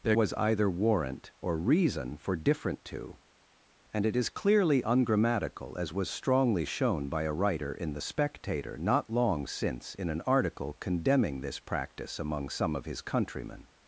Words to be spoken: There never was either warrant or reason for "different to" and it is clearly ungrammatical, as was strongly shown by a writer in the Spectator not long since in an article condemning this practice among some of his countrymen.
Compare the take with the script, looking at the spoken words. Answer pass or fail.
fail